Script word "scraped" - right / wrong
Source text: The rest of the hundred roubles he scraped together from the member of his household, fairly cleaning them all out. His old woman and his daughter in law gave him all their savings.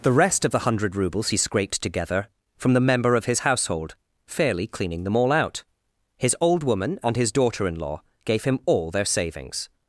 right